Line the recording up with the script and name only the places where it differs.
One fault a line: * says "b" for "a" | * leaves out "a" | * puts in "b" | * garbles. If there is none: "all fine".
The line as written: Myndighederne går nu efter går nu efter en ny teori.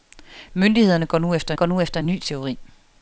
all fine